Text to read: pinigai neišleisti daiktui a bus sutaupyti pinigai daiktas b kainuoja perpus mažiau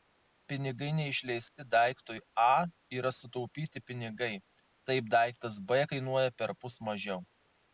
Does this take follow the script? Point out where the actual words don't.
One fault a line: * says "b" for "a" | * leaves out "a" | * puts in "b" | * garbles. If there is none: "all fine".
* says "yra" for "bus"
* puts in "taip"